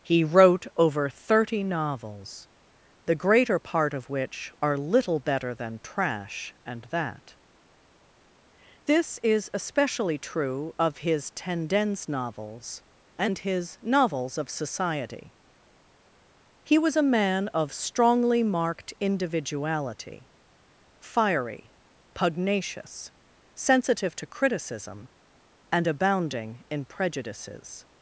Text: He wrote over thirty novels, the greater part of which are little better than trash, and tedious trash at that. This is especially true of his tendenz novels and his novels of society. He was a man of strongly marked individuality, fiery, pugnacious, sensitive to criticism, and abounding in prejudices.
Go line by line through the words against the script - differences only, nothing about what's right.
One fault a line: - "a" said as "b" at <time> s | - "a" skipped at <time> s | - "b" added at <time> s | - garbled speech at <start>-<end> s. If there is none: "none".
- "tedious trash at" skipped at 6.9 s